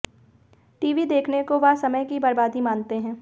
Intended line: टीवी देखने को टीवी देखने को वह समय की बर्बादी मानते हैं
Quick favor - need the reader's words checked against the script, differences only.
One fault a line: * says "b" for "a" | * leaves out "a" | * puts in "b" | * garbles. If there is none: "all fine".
* leaves out "टीवी देखने को"